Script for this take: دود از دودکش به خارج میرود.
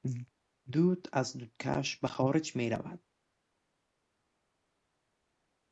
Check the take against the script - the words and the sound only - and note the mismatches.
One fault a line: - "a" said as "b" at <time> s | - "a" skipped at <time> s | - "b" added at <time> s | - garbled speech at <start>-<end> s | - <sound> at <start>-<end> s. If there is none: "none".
none